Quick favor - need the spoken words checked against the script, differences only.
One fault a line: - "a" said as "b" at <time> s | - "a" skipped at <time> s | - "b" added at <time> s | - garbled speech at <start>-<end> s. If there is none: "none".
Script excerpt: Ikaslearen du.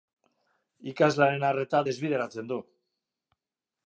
- "arreta desbideratzen" added at 1.5 s